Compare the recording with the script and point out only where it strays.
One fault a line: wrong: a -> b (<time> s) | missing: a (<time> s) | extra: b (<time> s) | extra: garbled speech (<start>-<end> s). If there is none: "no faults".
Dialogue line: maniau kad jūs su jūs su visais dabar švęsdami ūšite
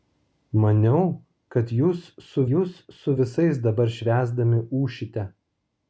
no faults